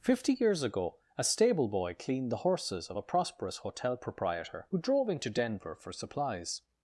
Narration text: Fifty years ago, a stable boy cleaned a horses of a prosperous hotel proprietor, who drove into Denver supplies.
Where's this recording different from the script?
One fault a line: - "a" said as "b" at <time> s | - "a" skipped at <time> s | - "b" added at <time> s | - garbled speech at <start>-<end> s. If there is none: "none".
- "a" said as "the" at 2.3 s
- "for" added at 5.8 s